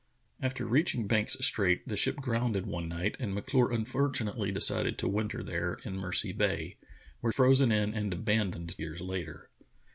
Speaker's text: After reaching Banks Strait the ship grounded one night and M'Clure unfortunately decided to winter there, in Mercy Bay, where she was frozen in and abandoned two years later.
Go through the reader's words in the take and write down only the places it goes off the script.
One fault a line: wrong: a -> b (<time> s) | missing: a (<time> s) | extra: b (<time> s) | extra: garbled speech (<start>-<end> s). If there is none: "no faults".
missing: she was (7.3 s)
missing: two (8.8 s)